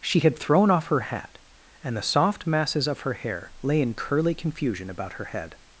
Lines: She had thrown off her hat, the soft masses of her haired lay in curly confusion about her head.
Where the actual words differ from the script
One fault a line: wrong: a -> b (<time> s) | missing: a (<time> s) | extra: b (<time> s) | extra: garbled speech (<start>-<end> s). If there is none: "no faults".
extra: and (1.8 s)
wrong: haired -> hair (3.1 s)